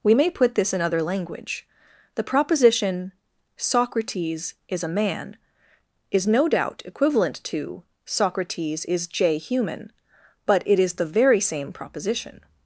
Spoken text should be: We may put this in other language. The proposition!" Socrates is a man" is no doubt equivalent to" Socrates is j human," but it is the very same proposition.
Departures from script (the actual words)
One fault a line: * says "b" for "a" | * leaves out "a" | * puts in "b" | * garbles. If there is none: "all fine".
all fine